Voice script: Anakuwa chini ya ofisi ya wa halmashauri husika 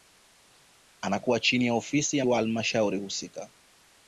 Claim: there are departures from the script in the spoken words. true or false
false